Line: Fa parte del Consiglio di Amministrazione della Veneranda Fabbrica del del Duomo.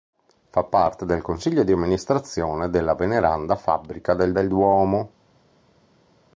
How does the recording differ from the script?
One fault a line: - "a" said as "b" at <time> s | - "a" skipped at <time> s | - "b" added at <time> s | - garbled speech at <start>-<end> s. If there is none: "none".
none